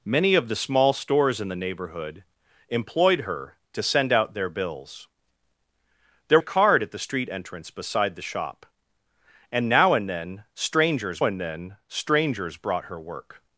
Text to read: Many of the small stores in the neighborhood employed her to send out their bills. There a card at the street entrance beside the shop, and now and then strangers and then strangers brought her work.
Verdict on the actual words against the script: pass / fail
pass